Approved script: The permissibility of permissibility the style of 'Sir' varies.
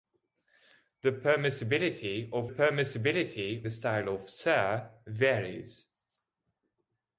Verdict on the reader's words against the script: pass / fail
pass